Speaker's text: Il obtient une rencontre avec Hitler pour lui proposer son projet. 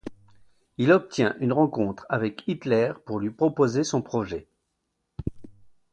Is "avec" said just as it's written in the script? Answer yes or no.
yes